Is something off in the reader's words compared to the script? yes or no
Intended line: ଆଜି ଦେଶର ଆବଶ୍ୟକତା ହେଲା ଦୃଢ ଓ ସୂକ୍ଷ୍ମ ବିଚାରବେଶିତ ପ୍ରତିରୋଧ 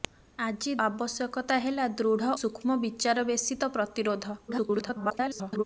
yes